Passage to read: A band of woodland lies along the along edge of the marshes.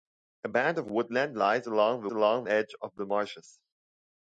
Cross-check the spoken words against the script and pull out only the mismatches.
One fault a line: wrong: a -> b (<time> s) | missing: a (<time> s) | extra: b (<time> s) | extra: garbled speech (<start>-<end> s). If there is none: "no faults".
no faults